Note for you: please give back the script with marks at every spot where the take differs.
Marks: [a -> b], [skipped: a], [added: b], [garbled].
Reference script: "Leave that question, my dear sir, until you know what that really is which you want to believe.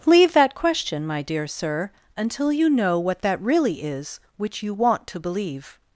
"Leave that question, my dear sir, until you know what that really is which you want to believe.